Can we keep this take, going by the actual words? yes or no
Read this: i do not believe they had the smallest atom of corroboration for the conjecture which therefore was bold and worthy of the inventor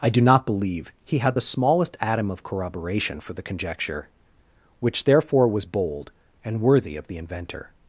no